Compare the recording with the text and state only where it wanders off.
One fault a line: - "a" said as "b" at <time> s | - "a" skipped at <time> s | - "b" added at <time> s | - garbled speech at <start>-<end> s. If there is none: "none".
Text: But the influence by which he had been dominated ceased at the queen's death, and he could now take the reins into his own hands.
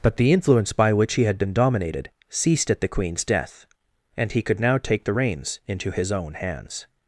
none